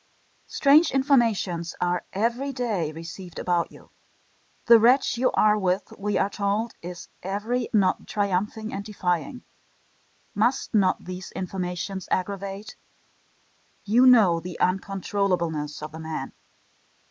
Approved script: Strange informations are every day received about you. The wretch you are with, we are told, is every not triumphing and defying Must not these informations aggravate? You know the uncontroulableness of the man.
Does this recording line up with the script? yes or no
yes